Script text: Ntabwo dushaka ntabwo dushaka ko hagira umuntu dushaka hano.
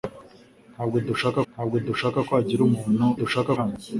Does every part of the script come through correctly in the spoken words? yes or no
yes